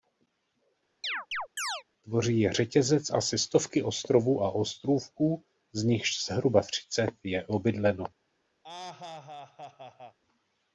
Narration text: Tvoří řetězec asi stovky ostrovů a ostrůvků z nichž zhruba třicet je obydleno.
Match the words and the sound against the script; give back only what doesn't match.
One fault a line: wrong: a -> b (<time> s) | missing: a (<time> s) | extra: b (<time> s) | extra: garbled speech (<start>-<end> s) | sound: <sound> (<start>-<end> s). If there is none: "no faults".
sound: chirp (1.0-1.8 s)
extra: je (2.4 s)
sound: laugh (8.6-10.2 s)